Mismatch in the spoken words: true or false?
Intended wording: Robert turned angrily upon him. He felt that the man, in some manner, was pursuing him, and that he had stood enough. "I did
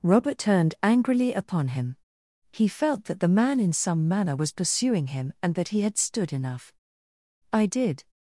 false